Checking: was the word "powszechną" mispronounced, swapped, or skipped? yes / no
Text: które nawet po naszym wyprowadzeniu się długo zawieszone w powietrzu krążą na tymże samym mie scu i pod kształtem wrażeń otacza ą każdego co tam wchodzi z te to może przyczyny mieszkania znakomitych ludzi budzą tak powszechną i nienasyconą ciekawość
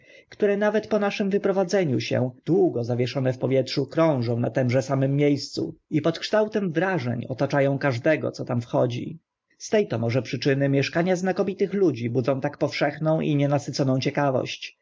no